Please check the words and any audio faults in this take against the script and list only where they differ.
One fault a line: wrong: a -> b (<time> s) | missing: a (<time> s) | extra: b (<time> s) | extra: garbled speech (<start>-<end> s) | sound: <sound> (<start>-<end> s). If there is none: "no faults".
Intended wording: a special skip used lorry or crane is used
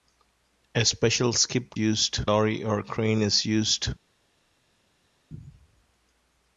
no faults